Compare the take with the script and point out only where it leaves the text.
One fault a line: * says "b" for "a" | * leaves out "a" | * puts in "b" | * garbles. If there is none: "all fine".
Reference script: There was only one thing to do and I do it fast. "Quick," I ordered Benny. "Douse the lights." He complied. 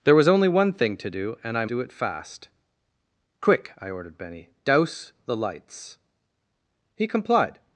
all fine